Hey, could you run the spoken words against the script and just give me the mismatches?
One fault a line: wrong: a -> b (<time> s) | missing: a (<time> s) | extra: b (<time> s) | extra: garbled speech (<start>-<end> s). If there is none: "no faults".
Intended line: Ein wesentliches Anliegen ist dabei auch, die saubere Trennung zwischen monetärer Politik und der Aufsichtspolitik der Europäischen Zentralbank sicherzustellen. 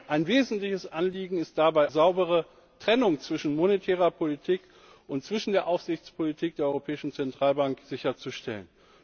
missing: auch die (1.9 s)